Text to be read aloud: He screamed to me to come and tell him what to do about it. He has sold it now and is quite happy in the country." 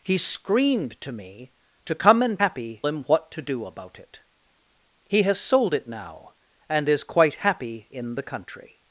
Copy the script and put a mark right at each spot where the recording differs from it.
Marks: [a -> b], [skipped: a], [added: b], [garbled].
He screamed to me to come and [tell -> happy] him what to do about it. He has sold it now and is quite happy in the country."